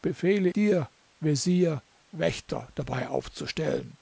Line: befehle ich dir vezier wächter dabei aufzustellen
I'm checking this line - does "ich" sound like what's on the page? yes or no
no